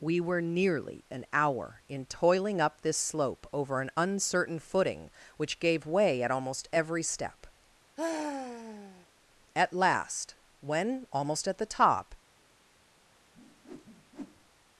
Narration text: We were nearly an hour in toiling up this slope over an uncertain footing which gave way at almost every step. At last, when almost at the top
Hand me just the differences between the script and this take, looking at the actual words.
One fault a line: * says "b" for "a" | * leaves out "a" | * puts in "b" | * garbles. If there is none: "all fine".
all fine